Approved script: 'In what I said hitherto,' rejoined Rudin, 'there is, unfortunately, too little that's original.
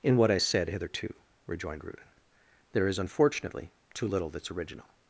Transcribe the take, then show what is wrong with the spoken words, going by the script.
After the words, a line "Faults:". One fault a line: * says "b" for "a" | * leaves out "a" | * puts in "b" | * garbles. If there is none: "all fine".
'In what I said hitherto,' rejoined Rudin, 'there is, unfortunately, too little that's original.
Faults:
all fine